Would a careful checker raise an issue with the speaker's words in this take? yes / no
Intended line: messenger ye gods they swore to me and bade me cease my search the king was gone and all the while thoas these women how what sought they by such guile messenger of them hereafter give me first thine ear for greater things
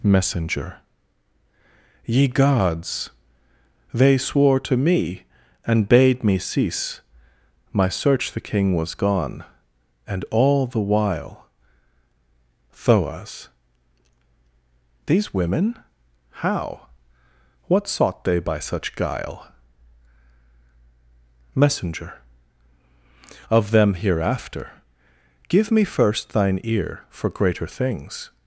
no